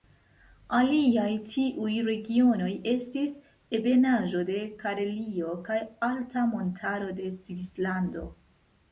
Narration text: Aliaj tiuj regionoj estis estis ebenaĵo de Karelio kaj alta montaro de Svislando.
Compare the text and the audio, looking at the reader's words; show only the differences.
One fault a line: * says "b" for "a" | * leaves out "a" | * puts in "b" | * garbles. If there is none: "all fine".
* leaves out "estis"